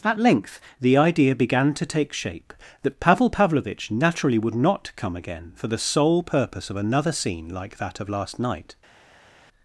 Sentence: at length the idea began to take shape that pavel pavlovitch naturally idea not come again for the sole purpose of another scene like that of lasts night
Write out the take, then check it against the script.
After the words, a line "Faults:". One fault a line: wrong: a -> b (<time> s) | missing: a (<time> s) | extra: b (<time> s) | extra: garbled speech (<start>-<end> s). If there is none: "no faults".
at length the idea began to take shape that pavel pavlovitch naturally would not come again for the sole purpose of another scene like that of last night
Faults:
wrong: idea -> would (4.4 s)
wrong: lasts -> last (8.1 s)